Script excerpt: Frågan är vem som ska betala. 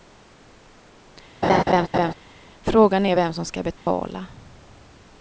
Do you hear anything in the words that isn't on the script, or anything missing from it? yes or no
no